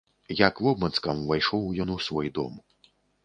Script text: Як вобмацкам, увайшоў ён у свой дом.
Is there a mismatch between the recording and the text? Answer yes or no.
no